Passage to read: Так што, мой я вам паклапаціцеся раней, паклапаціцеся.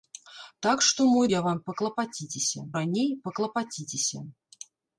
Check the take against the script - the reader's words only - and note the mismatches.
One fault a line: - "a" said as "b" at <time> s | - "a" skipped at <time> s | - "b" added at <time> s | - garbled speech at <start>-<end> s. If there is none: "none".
none